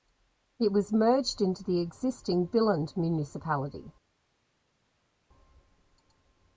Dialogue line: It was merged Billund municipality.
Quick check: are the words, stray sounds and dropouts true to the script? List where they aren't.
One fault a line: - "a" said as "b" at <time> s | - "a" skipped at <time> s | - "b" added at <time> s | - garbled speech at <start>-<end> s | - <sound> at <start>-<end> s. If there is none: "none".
- "into the existing" added at 1.4 s